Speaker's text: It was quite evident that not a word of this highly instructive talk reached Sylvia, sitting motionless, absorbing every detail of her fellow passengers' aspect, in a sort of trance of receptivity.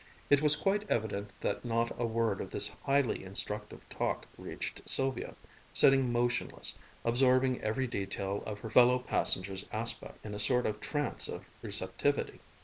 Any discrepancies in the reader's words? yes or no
no